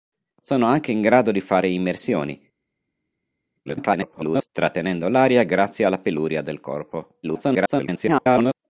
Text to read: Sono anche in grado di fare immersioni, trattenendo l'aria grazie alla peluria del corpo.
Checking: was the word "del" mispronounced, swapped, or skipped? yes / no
no